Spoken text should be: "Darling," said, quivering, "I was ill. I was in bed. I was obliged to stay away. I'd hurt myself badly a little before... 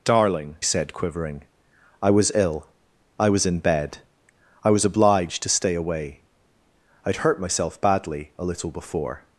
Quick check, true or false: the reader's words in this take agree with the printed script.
true